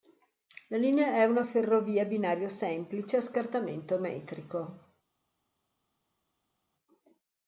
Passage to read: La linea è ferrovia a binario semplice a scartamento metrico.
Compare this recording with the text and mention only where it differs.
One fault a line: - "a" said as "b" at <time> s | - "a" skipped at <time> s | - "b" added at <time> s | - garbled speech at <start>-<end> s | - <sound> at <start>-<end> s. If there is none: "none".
- "una" added at 1.2 s